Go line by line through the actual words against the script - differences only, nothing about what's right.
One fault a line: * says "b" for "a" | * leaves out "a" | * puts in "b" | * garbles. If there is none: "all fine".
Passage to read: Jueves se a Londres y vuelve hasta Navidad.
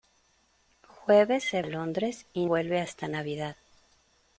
all fine